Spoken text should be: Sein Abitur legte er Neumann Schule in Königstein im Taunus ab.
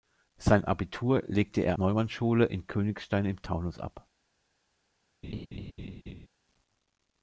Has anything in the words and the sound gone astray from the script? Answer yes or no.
yes